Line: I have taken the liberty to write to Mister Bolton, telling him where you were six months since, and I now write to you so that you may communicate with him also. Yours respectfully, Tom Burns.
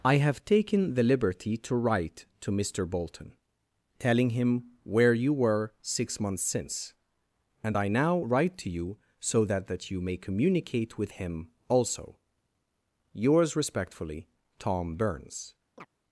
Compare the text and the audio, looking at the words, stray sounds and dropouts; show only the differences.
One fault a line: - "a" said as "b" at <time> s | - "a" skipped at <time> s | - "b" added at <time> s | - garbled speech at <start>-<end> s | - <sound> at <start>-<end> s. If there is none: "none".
- "that" added at 9.7 s
- chirp at 15.8-15.9 s